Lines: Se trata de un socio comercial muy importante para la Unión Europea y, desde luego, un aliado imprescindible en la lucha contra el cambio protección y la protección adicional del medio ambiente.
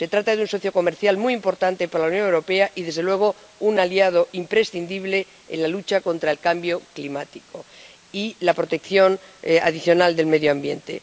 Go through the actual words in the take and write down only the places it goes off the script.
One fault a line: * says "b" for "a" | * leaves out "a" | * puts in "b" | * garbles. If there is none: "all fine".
* says "climático" for "protección"